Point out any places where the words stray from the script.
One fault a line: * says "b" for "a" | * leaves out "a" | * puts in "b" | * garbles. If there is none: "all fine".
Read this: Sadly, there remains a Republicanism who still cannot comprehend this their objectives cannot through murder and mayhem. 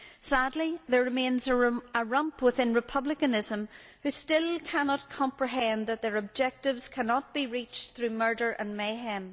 * puts in "rump within"
* says "that" for "this"
* puts in "be reached"